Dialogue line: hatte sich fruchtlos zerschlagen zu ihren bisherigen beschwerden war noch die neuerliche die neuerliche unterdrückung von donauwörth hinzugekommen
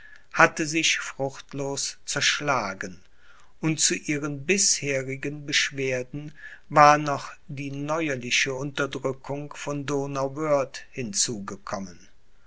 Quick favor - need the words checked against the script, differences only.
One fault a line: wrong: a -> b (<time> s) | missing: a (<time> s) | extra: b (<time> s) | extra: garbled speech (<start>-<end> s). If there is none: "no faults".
extra: und (3.6 s)
missing: die neuerliche (8.6 s)